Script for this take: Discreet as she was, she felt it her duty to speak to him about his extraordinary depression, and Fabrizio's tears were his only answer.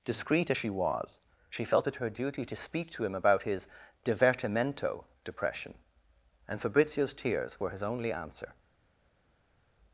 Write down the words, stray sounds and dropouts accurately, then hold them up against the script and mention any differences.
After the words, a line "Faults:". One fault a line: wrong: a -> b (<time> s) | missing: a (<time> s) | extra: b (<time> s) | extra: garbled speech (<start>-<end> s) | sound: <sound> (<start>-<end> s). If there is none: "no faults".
Discreet as she was, she felt it her duty to speak to him about his divertimento depression, and Fabrizio's tears were his only answer.
Faults:
wrong: extraordinary -> divertimento (4.1 s)